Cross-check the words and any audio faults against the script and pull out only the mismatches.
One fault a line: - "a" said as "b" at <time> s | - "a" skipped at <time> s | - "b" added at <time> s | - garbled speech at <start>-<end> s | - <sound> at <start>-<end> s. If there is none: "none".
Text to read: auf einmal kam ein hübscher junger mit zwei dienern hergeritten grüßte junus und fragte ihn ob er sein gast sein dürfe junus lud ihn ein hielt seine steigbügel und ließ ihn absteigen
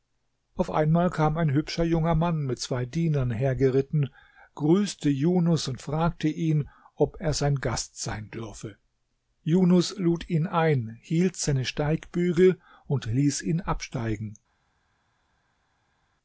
- "mann" added at 2.1 s